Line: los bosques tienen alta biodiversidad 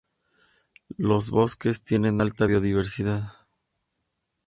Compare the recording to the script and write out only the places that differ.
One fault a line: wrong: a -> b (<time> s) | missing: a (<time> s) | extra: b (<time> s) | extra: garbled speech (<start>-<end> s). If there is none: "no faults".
no faults